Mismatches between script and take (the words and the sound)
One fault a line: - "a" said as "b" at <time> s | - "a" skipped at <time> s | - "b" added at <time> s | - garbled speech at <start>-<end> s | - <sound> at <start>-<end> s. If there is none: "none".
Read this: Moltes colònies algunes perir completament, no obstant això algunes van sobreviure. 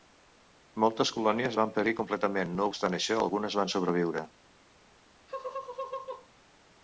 - "algunes" said as "van" at 1.6 s
- laugh at 5.3-6.3 s